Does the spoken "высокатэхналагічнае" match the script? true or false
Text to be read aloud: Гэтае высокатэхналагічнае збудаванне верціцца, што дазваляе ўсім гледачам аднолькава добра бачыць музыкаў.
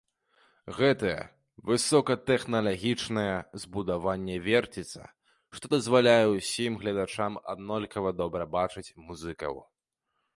true